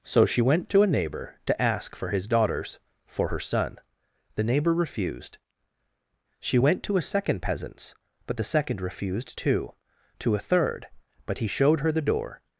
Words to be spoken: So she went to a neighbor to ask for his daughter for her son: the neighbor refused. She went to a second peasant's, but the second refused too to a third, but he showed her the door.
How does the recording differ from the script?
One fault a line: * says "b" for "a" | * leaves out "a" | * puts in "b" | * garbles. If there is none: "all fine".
* says "daughters" for "daughter"